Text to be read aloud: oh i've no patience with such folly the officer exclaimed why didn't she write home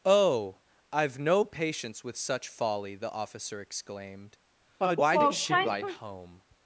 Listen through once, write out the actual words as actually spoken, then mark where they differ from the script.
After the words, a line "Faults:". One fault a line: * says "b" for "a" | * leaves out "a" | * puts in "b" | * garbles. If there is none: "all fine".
oh i've no patience with such folly the officer exclaimed why did she write home
Faults:
* says "did" for "didn't"